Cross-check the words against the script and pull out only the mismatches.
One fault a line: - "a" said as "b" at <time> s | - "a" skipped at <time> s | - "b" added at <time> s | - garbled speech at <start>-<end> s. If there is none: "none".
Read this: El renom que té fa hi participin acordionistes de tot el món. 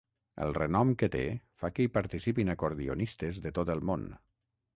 - "que" added at 1.8 s